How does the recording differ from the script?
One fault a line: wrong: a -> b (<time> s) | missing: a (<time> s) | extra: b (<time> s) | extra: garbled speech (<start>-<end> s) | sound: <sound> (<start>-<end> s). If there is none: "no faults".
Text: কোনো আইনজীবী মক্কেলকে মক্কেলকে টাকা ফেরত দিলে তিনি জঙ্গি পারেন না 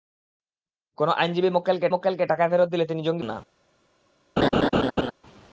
sound: laugh (4.4-5.1 s)